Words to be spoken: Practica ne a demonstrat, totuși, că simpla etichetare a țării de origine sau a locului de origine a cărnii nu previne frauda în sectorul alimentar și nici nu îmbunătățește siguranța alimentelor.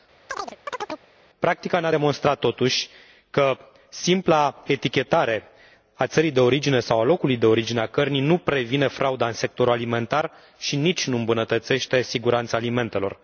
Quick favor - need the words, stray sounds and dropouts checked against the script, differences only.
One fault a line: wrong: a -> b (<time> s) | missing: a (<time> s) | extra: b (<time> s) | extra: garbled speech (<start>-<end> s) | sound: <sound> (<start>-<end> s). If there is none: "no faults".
sound: chirp (0.3-1.1 s)